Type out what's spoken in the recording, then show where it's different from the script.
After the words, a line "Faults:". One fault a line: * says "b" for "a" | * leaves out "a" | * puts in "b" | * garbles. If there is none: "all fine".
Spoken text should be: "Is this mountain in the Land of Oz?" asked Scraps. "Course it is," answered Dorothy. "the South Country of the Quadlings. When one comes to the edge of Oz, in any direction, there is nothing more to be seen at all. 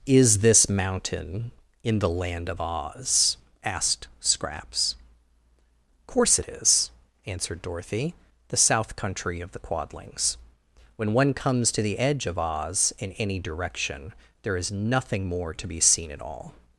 "Is this mountain in the Land of Oz?" asked Scraps. "Course it is," answered Dorothy. "the South Country of the Quadlings. When one comes to the edge of Oz, in any direction, there is nothing more to be seen at all.
Faults:
all fine